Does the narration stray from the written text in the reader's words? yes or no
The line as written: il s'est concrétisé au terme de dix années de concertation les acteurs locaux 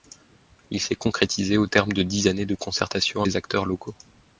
no